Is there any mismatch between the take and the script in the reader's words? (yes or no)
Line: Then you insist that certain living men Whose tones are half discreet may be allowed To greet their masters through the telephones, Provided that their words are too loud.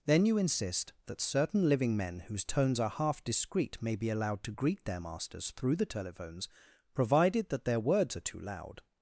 no